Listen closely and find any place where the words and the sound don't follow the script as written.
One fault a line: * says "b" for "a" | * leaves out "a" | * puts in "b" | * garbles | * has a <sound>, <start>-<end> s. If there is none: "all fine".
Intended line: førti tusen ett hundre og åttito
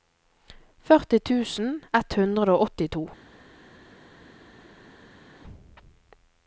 all fine